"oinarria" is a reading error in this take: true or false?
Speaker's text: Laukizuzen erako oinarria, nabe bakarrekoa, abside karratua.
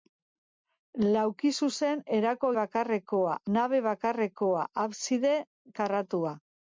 true